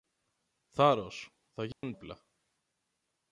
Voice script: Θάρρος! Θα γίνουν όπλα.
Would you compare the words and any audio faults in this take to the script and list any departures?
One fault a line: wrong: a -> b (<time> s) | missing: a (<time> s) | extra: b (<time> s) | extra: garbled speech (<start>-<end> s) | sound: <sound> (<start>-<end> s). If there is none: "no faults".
sound: dropout (1.7-1.8 s)